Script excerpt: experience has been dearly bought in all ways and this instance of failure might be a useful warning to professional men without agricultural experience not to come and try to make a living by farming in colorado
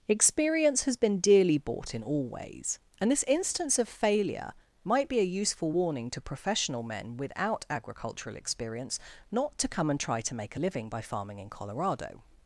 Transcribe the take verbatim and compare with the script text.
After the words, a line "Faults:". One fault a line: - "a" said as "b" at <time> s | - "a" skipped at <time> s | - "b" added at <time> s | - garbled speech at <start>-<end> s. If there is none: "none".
experience has been dearly bought in all ways and this instance of failure might be a useful warning to professional men without agricultural experience not to come and try to make a living by farming in colorado
Faults:
none